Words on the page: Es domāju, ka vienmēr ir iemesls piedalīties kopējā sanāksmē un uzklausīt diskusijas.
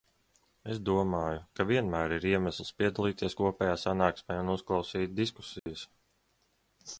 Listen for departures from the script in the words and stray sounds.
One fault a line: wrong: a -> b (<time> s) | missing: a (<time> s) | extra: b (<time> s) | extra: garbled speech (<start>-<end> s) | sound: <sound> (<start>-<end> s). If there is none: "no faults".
sound: dropout (5.6-5.7 s)